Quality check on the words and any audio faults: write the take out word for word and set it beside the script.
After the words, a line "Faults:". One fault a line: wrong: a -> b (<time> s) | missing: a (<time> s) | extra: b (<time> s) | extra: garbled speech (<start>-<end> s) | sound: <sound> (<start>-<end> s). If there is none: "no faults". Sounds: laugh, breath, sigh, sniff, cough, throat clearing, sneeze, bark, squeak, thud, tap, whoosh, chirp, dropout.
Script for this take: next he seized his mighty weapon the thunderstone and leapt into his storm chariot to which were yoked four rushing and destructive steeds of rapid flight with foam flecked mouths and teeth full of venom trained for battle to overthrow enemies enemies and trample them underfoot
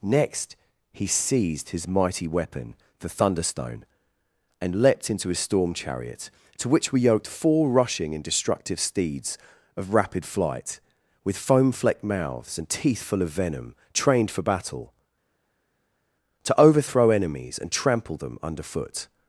next he seized his mighty weapon the thunderstone and leapt into his storm chariot to which were yoked four rushing and destructive steeds of rapid flight with foam flecked mouths and teeth full of venom trained for battle to overthrow enemies and trample them underfoot
Faults:
missing: enemies (17.6 s)